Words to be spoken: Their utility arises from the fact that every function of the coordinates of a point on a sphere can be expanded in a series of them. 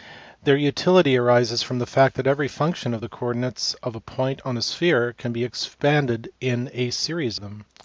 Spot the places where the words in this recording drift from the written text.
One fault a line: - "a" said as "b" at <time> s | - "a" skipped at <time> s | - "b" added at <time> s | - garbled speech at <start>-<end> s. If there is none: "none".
- "of" skipped at 7.4 s